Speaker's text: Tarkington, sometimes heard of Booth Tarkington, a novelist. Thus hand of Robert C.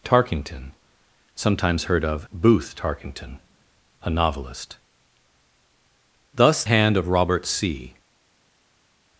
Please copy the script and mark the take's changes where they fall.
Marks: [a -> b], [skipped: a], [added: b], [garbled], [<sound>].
Tarkington, sometimes heard of Booth Tarkington, a novelist. Thus hand of Robert C.